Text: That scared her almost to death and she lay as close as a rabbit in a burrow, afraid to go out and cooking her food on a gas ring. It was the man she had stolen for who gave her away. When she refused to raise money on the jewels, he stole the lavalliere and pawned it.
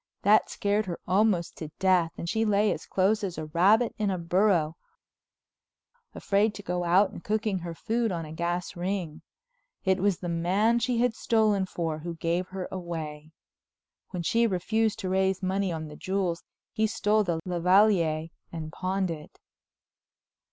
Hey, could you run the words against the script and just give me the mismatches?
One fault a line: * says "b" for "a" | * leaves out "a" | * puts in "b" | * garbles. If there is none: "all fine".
all fine